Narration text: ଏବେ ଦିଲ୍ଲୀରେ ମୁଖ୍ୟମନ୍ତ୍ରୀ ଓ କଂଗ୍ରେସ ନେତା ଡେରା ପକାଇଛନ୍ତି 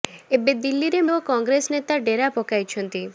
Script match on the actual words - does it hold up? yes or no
no